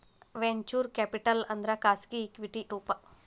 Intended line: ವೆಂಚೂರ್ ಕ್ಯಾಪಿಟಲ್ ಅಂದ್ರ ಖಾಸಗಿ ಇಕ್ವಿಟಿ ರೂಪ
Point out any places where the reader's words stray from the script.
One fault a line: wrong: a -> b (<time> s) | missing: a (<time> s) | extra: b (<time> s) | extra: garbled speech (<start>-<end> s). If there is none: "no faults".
no faults